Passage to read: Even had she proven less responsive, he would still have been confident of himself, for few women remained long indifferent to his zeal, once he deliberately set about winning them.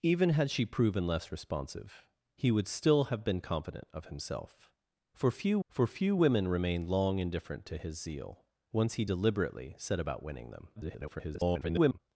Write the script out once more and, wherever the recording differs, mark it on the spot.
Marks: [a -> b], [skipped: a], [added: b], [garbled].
Even had she proven less responsive, he would still have been confident of himself, for few [added: for few] women remained long indifferent to his zeal, once he deliberately set about winning them. [garbled]